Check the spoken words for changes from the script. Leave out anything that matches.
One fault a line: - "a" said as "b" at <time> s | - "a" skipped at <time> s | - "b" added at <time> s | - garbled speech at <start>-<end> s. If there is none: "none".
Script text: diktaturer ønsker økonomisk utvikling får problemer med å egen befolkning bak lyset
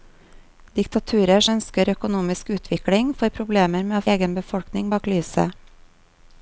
none